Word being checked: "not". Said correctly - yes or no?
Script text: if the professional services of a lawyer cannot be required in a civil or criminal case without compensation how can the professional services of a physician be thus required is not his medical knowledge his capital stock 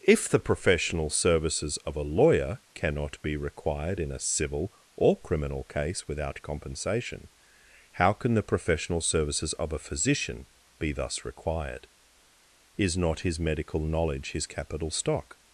yes